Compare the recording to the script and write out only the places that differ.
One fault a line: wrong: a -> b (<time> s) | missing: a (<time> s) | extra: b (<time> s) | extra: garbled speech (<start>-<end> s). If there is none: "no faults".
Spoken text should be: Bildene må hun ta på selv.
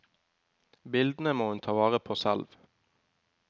extra: vare (1.8 s)